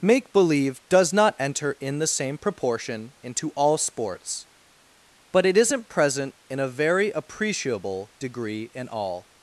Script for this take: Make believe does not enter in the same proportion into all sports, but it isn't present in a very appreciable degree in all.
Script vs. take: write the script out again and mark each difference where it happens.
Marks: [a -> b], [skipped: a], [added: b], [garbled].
Make believe does not enter in the same proportion into all sports, but it isn't present in a very appreciable degree in all.